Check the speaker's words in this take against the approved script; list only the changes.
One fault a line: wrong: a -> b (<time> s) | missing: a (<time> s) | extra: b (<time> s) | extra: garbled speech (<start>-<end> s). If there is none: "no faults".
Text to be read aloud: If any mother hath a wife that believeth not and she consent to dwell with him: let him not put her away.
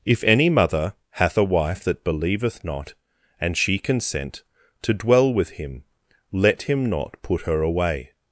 no faults